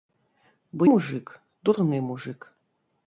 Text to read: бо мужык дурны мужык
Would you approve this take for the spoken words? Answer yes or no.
yes